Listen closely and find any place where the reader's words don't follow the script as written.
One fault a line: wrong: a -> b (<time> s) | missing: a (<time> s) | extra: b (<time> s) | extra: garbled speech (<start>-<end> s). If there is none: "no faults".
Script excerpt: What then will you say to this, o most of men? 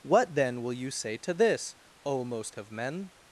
no faults